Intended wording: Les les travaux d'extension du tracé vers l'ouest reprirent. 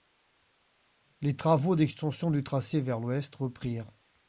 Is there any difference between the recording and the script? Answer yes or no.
yes